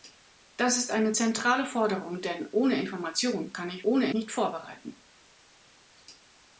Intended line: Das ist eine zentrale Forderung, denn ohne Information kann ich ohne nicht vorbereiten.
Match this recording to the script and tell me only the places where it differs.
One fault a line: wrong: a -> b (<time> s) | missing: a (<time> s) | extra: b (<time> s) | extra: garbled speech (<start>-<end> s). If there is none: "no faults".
no faults